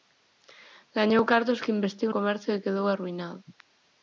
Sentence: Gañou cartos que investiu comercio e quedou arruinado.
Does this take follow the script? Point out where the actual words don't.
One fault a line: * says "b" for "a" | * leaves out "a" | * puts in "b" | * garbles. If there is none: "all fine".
all fine